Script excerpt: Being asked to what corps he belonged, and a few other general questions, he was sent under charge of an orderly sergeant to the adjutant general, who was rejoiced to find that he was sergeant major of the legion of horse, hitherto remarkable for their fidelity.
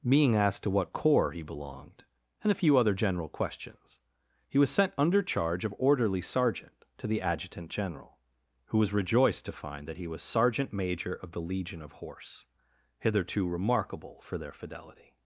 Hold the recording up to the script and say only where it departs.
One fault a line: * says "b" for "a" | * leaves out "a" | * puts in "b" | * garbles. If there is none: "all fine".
* leaves out "an"